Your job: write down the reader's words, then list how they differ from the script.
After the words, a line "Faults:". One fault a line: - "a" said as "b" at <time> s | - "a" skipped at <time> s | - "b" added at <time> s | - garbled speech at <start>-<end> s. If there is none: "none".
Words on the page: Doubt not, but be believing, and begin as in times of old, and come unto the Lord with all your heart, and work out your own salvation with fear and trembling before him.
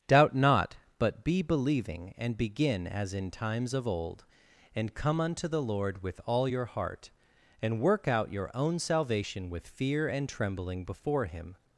Doubt not, but be believing, and begin as in times of old, and come unto the Lord with all your heart, and work out your own salvation with fear and trembling before him.
Faults:
none